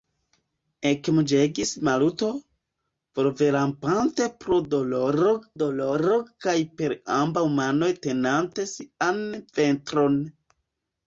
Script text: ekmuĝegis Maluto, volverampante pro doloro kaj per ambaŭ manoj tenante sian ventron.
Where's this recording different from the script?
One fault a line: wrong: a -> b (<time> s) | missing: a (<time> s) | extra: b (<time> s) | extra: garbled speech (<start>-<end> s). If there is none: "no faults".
extra: doloro (5.6 s)